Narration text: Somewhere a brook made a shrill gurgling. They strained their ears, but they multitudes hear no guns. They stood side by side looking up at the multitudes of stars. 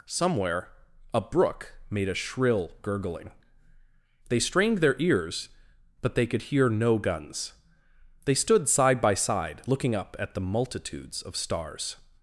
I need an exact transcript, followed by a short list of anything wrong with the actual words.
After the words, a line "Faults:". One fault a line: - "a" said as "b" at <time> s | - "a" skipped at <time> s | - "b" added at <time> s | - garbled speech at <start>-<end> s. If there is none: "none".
Somewhere a brook made a shrill gurgling. They strained their ears, but they could hear no guns. They stood side by side looking up at the multitudes of stars.
Faults:
- "multitudes" said as "could" at 6.2 s